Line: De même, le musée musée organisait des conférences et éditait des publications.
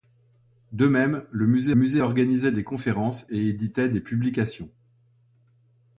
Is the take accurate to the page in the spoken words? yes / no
yes